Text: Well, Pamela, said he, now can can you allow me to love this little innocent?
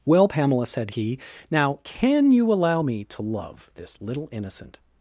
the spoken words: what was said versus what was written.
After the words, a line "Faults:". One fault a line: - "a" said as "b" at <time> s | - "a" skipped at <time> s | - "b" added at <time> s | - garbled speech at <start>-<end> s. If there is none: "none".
Well, Pamela, said he, now can you allow me to love this little innocent?
Faults:
- "can" skipped at 2.3 s